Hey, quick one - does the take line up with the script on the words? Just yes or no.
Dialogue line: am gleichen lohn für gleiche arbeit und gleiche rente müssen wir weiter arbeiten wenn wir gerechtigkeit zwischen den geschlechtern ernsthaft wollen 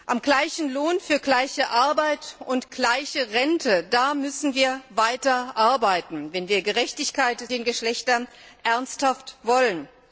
no